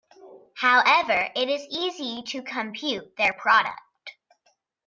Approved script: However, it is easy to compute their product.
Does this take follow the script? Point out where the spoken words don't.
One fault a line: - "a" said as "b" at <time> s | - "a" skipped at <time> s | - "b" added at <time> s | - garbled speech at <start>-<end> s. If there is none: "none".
none